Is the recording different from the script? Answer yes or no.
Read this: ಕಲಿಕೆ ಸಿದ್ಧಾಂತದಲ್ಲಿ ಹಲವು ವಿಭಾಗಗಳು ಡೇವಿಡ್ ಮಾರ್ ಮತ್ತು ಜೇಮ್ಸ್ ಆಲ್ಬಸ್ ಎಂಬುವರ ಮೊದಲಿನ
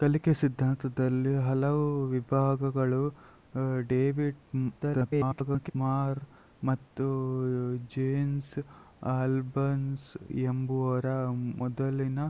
yes